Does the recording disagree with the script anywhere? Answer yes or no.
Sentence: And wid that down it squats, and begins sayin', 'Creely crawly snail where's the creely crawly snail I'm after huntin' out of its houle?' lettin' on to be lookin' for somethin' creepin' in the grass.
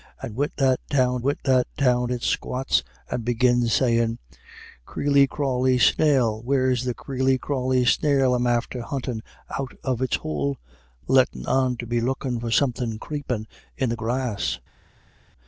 yes